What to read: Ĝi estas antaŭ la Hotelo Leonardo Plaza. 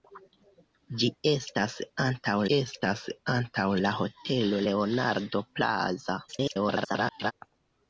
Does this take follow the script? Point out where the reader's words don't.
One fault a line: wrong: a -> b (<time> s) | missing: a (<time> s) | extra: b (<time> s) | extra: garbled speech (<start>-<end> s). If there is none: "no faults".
extra: estas antaŭ (2.6 s)
extra: garbled speech (6.3-7.3 s)